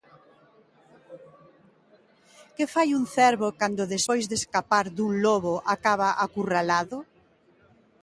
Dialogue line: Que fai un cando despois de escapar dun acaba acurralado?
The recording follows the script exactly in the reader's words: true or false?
false